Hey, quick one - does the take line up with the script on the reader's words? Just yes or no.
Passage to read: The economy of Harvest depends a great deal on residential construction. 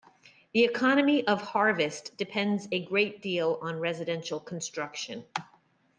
yes